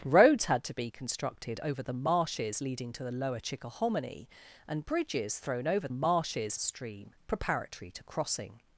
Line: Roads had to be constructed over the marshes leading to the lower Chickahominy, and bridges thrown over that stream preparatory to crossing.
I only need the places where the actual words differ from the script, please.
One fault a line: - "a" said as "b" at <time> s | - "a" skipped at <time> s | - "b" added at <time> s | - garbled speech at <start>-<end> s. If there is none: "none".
- "that" said as "marshes" at 5.9 s